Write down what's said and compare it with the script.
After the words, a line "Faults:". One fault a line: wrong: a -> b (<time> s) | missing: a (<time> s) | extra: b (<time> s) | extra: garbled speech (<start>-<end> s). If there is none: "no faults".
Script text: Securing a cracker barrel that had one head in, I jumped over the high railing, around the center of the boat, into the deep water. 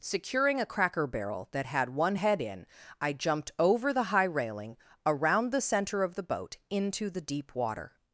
Securing a cracker barrel that had one head in, I jumped over the high railing, around the center of the boat, into the deep water.
Faults:
no faults